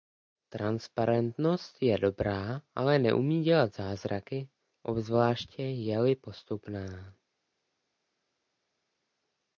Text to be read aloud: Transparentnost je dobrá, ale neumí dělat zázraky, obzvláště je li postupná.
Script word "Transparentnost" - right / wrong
right